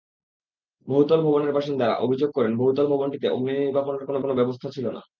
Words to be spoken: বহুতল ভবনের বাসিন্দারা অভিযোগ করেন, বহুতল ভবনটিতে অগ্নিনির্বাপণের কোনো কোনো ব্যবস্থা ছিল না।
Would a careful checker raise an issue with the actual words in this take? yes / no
no